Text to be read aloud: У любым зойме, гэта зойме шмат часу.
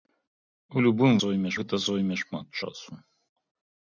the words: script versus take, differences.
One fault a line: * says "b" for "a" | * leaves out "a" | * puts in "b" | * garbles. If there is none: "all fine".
all fine